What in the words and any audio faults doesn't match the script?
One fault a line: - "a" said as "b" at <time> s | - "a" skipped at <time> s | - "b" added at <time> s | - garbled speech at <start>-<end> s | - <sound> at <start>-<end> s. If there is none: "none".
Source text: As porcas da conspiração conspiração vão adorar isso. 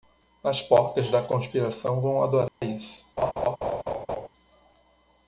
- "conspiração" skipped at 2.0 s
- dropout at 2.5-2.6 s
- laugh at 3.2-4.3 s